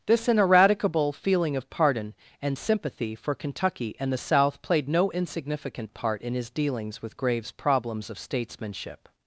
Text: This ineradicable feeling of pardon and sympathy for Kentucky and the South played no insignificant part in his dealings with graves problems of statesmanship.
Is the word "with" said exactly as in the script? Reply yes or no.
yes